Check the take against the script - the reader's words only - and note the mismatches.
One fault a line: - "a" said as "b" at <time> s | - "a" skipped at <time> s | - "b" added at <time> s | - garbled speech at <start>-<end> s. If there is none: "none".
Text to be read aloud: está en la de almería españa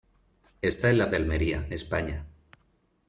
none